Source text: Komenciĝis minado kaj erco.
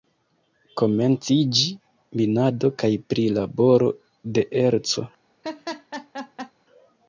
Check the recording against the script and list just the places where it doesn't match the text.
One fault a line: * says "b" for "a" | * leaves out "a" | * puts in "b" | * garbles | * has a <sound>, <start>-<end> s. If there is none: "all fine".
* puts in "prilaboro de"
* has a laugh, 5.4-6.5 s